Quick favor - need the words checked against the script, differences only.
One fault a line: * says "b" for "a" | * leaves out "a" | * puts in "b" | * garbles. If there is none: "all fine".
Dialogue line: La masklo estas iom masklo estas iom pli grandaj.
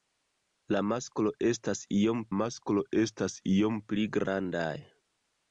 all fine